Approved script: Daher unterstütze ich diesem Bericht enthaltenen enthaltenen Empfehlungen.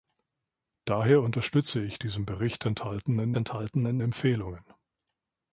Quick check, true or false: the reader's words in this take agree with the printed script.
true